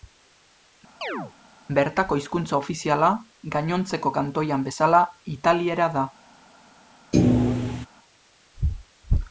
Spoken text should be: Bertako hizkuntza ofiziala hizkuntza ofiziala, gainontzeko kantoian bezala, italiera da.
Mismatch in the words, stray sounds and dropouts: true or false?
true